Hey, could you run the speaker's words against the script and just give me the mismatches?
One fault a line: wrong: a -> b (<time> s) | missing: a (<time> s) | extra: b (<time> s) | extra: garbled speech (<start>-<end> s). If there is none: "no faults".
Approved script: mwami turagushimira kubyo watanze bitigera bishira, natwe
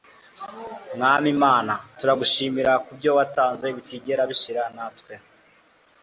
extra: mana (1.4 s)